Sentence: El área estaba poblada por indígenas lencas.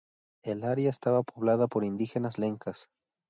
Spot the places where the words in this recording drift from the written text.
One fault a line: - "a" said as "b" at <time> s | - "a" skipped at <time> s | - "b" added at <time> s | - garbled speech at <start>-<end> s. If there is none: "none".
none